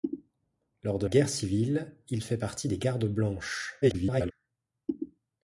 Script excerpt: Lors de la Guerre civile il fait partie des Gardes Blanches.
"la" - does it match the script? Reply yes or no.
no